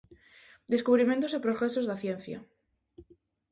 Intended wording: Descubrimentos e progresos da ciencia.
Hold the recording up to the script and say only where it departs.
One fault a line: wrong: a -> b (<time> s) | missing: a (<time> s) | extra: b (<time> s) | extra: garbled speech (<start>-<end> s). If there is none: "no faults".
no faults